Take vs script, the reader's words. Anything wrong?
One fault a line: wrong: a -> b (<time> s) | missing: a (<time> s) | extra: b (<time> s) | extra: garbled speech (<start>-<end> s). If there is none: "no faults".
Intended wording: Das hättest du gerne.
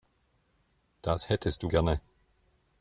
no faults